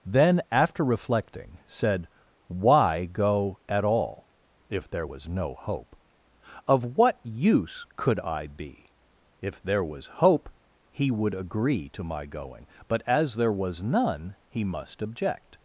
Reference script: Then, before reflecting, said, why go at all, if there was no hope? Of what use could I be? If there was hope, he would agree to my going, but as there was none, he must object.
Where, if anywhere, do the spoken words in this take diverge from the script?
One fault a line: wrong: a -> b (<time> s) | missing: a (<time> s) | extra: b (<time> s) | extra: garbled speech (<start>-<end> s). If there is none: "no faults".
wrong: before -> after (0.5 s)